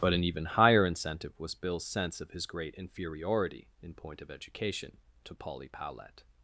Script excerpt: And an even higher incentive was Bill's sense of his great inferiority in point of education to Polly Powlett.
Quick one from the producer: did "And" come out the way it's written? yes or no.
no